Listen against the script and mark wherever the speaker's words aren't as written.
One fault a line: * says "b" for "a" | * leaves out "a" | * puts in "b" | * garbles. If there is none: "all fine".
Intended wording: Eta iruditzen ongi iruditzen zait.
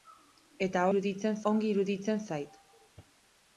all fine